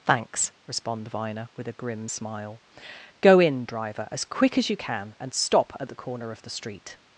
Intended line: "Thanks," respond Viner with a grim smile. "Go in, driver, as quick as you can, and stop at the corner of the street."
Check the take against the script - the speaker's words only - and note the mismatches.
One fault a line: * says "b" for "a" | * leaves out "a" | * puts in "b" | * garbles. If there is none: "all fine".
all fine